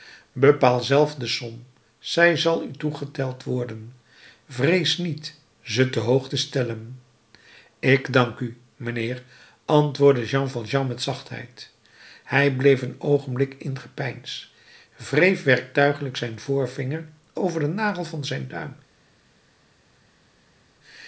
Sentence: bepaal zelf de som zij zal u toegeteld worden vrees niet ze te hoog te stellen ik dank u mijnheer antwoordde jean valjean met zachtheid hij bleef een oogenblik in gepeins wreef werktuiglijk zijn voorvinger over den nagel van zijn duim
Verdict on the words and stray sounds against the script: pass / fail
pass